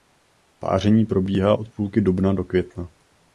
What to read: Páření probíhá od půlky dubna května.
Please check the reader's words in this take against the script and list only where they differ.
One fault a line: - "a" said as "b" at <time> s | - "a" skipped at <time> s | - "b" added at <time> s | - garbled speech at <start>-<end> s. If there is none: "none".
- "do" added at 2.3 s